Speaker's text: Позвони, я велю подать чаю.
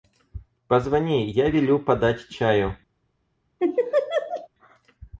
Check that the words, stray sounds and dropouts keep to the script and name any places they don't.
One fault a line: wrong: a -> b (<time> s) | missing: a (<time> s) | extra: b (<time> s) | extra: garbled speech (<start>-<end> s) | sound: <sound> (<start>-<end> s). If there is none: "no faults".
sound: laugh (3.6-4.5 s)